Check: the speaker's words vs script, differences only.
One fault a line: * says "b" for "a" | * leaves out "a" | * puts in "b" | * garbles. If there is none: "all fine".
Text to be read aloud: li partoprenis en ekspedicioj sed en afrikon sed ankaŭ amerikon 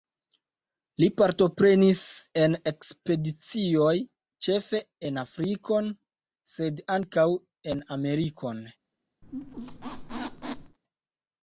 * says "ĉefe" for "sed"
* puts in "en"